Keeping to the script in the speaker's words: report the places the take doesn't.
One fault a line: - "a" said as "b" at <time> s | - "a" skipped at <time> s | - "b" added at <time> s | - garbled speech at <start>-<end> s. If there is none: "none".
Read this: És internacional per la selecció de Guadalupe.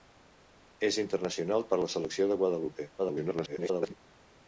- garbled speech at 3.0-3.9 s